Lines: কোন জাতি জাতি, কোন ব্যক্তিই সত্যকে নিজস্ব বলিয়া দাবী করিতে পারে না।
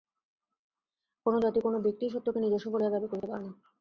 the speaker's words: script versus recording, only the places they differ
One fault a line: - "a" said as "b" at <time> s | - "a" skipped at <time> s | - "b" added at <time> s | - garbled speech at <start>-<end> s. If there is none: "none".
- "জাতি" skipped at 1.6 s